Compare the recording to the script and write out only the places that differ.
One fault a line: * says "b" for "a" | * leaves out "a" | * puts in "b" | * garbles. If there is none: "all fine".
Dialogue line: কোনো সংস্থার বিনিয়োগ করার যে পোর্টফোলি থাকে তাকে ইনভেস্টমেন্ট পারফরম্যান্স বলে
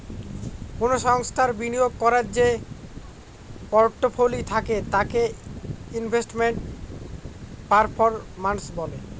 all fine